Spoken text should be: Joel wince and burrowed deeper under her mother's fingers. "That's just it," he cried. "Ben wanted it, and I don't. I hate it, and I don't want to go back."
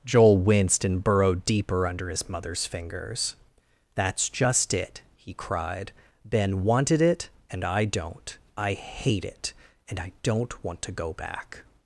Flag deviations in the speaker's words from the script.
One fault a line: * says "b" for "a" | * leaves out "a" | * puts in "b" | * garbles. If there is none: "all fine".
* says "winced" for "wince"
* says "his" for "her"